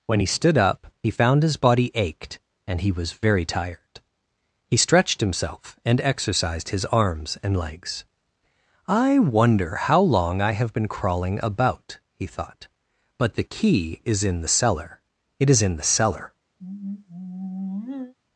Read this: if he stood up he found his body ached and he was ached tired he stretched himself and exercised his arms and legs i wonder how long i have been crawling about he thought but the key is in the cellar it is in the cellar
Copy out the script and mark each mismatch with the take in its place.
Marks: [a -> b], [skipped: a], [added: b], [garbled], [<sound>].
[if -> when] he stood up he found his body ached and he was [ached -> very] tired he stretched himself and exercised his arms and legs i wonder how long i have been crawling about he thought but the key is in the cellar it is in the cellar [sigh]